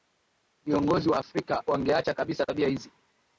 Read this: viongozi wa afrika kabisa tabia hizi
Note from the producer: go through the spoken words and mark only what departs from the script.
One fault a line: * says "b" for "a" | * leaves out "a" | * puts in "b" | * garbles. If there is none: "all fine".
* puts in "wangeacha"